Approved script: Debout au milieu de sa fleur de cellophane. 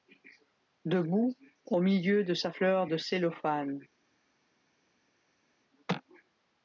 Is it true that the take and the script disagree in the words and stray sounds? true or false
false